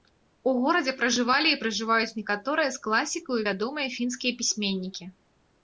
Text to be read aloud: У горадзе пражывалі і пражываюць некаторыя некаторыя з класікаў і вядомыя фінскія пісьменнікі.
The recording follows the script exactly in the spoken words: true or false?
false